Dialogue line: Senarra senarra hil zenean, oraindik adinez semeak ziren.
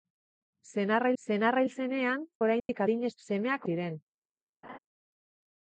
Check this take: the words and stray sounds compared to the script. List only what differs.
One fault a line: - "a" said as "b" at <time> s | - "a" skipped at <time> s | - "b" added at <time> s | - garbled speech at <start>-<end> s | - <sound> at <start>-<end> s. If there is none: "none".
- dropout at 2.6-2.7 s
- laugh at 4.6-4.8 s